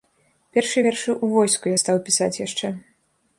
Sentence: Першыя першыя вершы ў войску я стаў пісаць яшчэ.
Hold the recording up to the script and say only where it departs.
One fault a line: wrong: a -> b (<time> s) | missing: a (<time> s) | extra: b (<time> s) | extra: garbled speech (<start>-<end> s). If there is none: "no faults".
missing: першыя (0.8 s)